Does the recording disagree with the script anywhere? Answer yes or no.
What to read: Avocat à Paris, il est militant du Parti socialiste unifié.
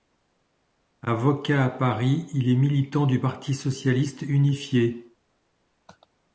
no